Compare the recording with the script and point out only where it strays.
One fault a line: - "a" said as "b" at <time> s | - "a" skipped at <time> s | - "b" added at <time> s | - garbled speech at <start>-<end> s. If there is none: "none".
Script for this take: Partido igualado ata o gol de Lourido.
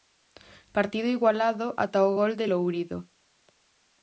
none